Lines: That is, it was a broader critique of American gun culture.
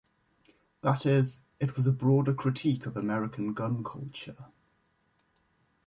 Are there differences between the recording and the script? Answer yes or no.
no